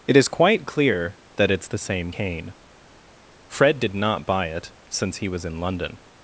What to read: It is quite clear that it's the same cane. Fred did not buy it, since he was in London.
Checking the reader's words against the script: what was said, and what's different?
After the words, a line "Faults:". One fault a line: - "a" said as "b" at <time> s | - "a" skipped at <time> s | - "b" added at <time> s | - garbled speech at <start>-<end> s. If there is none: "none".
It is quite clear that it's the same cane. Fred did not buy it, since he was in London.
Faults:
none